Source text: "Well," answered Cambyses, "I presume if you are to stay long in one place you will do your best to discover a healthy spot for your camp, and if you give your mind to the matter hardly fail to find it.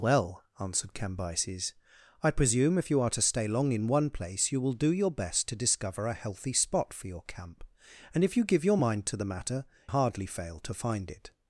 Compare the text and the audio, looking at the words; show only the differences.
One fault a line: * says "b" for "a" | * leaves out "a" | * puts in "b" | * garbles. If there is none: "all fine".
all fine